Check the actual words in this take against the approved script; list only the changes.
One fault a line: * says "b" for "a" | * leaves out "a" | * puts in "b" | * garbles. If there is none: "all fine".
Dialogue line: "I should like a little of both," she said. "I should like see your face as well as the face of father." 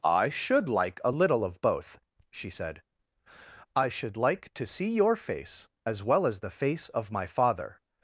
* puts in "to"
* puts in "my"